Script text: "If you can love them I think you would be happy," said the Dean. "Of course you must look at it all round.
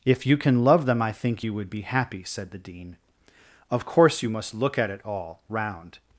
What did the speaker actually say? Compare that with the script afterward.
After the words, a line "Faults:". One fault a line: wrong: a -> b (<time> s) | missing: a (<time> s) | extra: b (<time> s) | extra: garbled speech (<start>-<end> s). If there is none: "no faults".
"If you can love them I think you would be happy," said the Dean. "Of course you must look at it all round.
Faults:
no faults